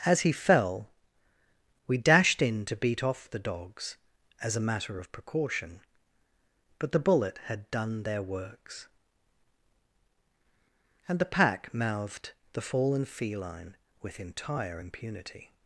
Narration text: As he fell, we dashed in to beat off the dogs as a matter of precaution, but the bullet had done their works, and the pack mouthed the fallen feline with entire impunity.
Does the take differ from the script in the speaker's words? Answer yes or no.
no